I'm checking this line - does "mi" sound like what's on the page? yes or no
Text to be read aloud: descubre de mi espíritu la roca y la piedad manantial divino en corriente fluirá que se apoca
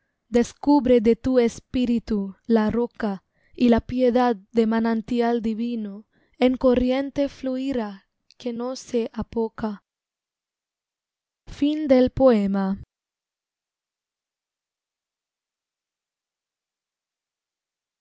no